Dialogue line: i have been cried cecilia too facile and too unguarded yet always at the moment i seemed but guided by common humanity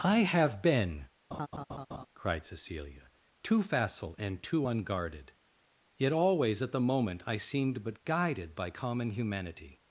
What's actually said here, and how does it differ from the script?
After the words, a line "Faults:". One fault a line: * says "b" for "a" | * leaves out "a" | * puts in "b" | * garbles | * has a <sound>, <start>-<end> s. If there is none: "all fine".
i have been cried cecilia too facile and too unguarded yet always at the moment i seemed but guided by common humanity
Faults:
* has a laugh, 1.3-2.1 s